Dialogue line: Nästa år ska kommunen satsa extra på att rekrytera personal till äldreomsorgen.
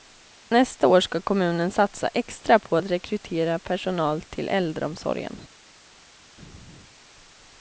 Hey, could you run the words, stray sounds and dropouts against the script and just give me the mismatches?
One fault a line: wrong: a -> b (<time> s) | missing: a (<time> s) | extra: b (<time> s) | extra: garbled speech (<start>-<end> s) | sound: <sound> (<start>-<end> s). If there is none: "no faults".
no faults